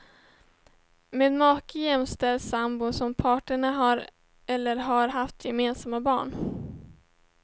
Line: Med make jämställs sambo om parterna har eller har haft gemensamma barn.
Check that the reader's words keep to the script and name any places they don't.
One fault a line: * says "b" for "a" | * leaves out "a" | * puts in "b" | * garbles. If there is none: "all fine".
all fine